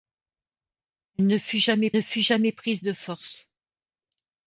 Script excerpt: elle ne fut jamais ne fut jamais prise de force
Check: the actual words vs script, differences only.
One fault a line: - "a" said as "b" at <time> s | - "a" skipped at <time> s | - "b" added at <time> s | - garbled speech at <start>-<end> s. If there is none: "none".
none